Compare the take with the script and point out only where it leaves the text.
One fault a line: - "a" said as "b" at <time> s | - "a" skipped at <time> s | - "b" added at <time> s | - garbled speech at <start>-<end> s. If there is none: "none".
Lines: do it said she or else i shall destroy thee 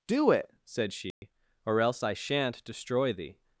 - "shall" said as "shan't" at 2.1 s